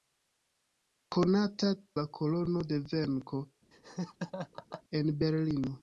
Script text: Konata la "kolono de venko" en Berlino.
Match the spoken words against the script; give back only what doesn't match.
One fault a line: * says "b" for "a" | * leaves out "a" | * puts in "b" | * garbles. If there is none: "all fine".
all fine